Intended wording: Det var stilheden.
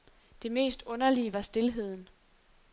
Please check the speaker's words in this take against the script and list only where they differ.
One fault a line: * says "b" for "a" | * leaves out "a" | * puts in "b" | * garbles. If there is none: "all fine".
* puts in "mest underlige"